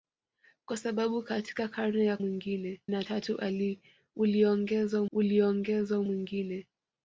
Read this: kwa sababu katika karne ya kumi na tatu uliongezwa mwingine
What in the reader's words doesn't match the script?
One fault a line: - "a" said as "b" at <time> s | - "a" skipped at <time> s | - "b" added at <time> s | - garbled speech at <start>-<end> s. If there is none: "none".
- "kumi" said as "mwingine" at 2.2 s
- "uliongezwa" added at 5.1 s